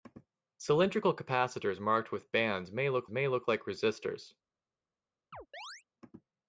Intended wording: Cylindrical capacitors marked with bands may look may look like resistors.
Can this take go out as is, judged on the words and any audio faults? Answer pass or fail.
fail